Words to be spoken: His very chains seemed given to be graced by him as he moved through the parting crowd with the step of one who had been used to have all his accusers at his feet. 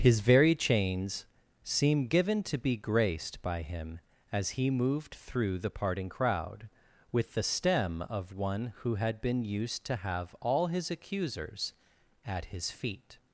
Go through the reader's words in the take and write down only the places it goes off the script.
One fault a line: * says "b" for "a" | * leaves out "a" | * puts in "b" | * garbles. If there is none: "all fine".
* says "seem" for "seemed"
* says "stem" for "step"